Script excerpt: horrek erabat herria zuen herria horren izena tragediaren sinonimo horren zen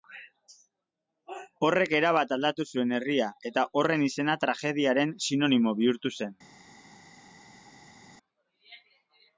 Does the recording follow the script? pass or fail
fail